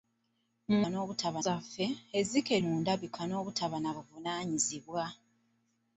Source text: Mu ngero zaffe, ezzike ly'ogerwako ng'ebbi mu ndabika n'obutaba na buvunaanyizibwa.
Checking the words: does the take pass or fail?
fail